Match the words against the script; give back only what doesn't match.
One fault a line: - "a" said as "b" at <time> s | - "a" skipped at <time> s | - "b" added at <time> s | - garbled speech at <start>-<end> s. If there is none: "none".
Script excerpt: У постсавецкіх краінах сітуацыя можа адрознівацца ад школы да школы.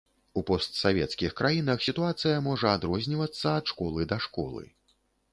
none